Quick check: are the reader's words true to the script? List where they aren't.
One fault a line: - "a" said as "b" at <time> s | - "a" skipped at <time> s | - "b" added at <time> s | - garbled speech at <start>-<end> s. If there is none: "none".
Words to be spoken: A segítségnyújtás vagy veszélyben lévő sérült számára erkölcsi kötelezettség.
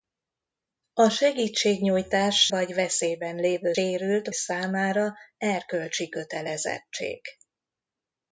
none